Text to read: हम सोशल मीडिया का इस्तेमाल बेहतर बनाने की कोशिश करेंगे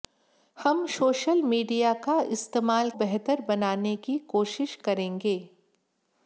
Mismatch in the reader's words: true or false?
false